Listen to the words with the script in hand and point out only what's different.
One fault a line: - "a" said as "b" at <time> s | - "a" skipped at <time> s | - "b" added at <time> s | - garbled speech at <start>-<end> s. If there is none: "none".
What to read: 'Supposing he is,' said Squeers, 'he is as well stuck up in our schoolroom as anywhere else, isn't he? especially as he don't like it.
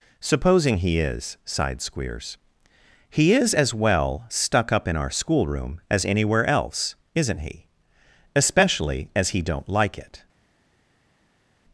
- "said" said as "sighed" at 1.4 s